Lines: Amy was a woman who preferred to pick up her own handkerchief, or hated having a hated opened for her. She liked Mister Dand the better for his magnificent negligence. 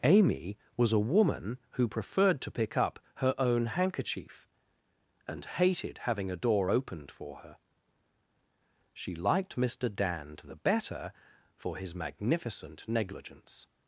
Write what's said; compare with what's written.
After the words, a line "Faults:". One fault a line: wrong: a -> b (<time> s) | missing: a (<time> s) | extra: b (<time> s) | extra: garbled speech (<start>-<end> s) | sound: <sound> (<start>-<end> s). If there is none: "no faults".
Amy was a woman who preferred to pick up her own handkerchief, and hated having a door opened for her. She liked Mister Dand the better for his magnificent negligence.
Faults:
wrong: or -> and (5.3 s)
wrong: hated -> door (6.3 s)